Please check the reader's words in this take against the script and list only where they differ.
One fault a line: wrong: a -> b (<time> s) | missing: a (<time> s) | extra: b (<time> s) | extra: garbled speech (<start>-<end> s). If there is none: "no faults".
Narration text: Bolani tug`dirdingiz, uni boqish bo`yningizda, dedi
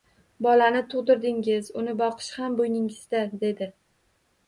extra: ham (2.4 s)